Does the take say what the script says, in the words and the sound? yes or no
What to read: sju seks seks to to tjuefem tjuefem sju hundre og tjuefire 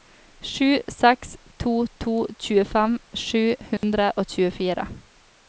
no